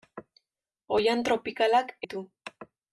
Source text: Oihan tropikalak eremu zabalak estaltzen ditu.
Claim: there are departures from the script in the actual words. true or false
true